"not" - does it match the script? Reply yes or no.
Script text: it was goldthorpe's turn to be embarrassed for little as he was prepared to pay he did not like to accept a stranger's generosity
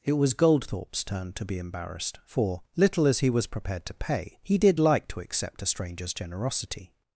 no